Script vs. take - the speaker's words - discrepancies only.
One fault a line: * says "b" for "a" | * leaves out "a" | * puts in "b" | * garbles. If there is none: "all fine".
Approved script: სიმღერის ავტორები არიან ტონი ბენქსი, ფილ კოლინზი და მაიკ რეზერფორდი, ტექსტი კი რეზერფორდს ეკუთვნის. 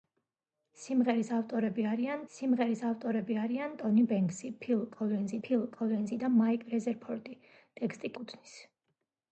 * puts in "სიმღერის ავტორები არიან"
* puts in "ფილ კოლინზი"
* leaves out "კი რეზერფორდს"